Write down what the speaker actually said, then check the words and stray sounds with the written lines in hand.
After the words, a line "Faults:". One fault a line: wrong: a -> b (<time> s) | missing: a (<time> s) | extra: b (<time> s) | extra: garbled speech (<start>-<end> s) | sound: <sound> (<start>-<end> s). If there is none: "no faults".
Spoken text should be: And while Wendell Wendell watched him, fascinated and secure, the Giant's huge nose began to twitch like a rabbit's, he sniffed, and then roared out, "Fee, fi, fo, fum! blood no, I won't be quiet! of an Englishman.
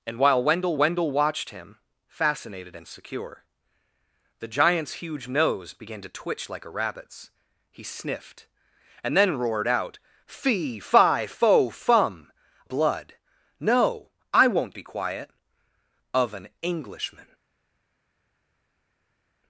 And while Wendell Wendell watched him, fascinated and secure, the Giant's huge nose began to twitch like a rabbit's, he sniffed, and then roared out, "Fee, fi, fo, fum! blood no, I won't be quiet! of an Englishman.
Faults:
no faults